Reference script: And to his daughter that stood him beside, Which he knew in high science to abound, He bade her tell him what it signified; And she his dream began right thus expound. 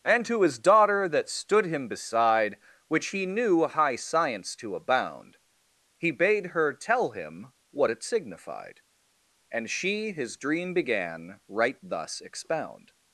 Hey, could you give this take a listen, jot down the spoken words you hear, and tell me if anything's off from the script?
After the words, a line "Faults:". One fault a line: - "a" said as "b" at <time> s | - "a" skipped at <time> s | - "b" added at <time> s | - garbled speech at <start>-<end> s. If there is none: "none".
And to his daughter that stood him beside, Which he knew high science to abound, He bade her tell him what it signified; And she his dream began right thus expound.
Faults:
- "in" skipped at 3.7 s